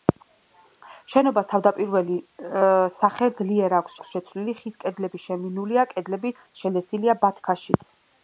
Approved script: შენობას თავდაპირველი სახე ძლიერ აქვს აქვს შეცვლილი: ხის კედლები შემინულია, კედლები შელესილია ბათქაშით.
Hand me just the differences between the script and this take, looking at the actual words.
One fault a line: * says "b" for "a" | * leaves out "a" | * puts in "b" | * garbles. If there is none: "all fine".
all fine